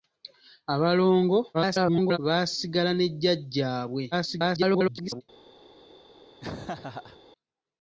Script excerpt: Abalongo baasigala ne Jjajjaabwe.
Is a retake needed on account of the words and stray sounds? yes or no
yes